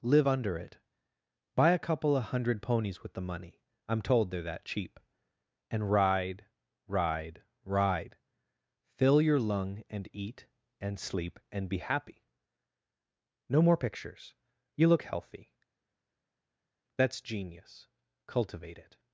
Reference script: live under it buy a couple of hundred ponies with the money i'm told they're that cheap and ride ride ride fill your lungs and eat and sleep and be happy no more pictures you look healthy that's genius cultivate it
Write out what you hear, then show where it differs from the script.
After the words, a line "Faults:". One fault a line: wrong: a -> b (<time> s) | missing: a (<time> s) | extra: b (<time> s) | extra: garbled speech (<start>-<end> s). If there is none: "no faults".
live under it buy a couple of hundred ponies with the money i'm told they're that cheap and ride ride ride fill your lung and eat and sleep and be happy no more pictures you look healthy that's genius cultivate it
Faults:
wrong: lungs -> lung (9.4 s)